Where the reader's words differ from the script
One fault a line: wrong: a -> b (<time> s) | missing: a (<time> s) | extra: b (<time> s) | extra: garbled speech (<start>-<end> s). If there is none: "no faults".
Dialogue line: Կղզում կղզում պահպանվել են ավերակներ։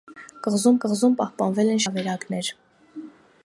no faults